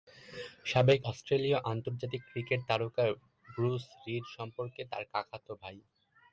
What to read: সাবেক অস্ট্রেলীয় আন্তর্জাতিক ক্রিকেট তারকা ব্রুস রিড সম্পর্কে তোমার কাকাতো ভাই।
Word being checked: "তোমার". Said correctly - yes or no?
no